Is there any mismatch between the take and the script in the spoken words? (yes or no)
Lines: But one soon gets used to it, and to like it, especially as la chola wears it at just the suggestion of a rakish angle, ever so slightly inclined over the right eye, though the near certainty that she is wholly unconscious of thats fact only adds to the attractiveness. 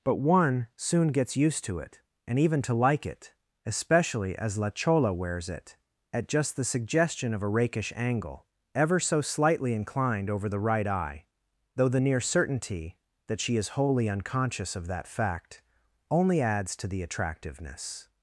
yes